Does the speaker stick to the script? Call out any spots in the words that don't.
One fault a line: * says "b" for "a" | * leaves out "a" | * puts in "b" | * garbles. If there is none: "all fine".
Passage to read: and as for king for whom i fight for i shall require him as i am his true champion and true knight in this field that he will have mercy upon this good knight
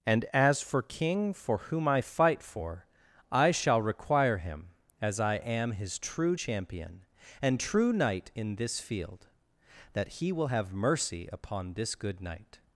all fine